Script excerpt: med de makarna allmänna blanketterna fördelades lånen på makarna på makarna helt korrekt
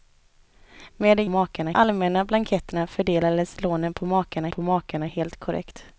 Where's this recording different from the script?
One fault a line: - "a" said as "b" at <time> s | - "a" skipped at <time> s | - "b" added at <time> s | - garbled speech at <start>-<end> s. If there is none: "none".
none